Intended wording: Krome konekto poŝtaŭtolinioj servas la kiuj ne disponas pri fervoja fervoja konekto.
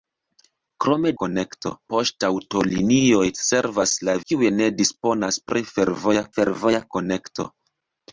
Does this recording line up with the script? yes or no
yes